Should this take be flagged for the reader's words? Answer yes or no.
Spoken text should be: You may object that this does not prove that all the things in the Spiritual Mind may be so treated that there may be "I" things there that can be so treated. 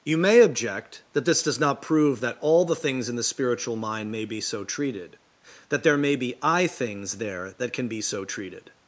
no